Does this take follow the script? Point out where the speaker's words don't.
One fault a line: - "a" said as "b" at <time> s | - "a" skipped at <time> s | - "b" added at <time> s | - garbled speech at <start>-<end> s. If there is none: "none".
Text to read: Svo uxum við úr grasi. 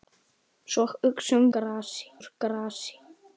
- "við" said as "grasi" at 1.6 s